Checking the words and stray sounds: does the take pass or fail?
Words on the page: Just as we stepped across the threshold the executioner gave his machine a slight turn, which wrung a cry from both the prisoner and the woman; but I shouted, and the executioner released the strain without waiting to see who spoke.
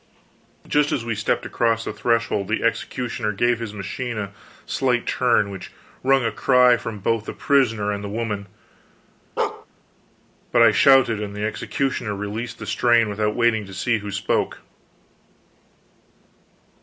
fail